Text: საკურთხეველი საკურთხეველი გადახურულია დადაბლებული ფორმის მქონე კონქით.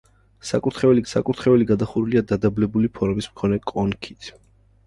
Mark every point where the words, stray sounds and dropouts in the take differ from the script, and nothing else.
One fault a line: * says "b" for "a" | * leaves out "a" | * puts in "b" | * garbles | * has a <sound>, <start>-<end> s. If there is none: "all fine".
all fine